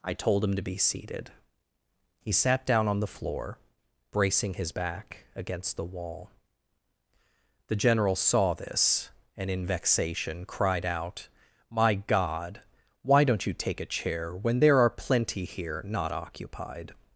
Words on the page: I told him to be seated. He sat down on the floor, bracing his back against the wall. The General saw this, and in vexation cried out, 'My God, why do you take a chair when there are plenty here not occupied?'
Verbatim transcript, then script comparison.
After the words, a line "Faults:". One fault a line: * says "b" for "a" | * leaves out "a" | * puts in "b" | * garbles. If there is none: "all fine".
I told him to be seated. He sat down on the floor, bracing his back against the wall. The General saw this, and in vexation cried out, 'My God, why don't you take a chair when there are plenty here not occupied?'
Faults:
* says "don't" for "do"